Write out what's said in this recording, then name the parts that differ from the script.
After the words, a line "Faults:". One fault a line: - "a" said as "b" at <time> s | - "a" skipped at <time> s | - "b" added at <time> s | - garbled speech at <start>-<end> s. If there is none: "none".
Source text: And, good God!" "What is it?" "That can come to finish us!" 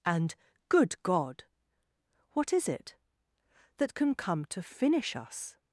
And, good God!" "What is it?" "That can come to finish us!"
Faults:
none